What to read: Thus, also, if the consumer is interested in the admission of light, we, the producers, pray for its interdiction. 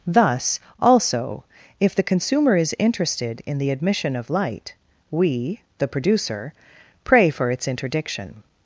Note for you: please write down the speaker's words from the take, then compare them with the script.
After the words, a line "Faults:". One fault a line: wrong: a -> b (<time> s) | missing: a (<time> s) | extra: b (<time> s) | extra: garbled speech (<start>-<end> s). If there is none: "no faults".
Thus, also, if the consumer is interested in the admission of light, we, the producer, pray for its interdiction.
Faults:
wrong: producers -> producer (5.9 s)